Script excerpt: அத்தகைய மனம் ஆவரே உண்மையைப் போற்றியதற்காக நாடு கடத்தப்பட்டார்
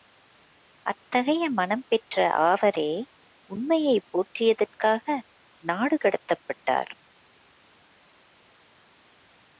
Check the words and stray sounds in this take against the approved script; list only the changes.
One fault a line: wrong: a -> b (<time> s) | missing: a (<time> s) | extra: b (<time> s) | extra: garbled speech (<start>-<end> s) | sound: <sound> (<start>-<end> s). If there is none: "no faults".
extra: பெற்ற (1.9 s)